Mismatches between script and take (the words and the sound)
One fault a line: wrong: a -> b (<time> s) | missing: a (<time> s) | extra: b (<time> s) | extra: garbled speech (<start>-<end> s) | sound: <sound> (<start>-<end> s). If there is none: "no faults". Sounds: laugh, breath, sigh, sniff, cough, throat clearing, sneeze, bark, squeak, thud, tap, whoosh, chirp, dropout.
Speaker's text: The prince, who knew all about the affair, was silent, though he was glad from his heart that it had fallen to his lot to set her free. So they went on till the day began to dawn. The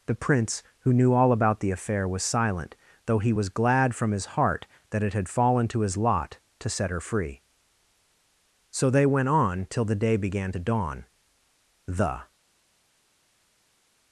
no faults